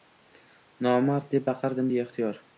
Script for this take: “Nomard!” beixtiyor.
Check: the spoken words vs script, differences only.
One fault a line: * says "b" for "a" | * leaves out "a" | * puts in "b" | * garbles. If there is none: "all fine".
* puts in "deb baqirdim"